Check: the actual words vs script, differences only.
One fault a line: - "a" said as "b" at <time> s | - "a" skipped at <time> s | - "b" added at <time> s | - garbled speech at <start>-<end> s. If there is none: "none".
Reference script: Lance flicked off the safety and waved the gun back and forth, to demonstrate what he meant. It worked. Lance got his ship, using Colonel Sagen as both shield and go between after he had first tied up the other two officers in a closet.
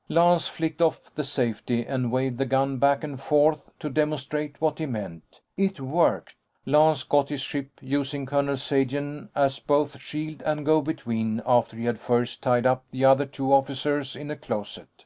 none